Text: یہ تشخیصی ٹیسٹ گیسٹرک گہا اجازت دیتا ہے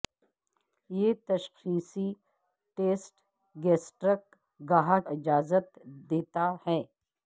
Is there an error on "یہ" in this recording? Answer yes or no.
no